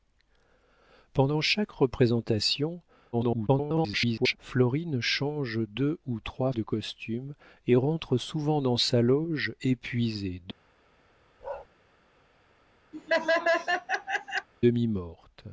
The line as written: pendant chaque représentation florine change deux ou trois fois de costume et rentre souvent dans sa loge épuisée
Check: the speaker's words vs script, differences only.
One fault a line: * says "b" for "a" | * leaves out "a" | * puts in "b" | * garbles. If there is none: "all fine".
* garbles
* leaves out "fois"